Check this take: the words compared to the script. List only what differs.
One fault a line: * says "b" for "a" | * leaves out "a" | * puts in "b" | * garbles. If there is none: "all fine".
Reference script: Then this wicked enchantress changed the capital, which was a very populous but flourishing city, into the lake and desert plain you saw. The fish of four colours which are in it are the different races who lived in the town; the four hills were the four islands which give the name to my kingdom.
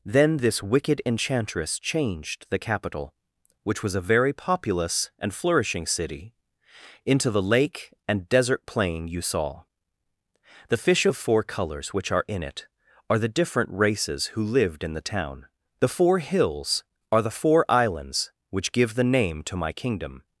* says "and" for "but"
* says "are" for "were"